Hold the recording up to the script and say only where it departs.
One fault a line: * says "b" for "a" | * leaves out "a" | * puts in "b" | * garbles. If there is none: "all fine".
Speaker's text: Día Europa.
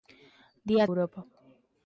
all fine